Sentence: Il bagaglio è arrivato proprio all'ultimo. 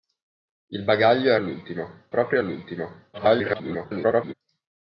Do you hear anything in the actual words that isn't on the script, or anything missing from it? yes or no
yes